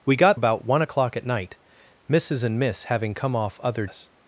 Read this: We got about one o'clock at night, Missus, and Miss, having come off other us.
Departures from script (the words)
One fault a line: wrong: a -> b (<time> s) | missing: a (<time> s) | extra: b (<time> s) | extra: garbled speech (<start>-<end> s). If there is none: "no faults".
no faults